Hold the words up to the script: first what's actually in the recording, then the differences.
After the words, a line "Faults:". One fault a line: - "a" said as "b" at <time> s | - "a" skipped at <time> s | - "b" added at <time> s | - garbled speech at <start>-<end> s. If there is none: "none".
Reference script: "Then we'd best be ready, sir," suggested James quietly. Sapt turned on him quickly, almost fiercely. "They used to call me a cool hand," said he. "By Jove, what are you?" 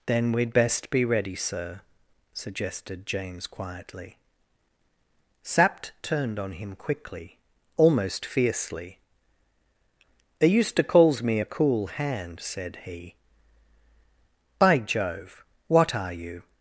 "Then we'd best be ready, sir," suggested James quietly. Sapt turned on him quickly, almost fiercely. "They used to calls me a cool hand," said he. "By Jove, what are you?"
Faults:
- "call" said as "calls" at 10.8 s